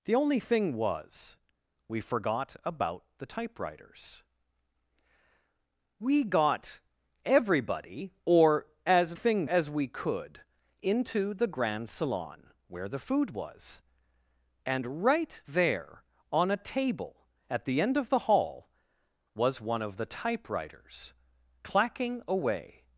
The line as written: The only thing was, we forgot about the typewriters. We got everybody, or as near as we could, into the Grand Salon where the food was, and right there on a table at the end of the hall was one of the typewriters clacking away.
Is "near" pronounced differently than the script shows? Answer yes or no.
yes